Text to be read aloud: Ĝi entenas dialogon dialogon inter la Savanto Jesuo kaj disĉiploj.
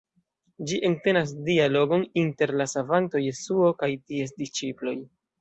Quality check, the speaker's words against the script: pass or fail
fail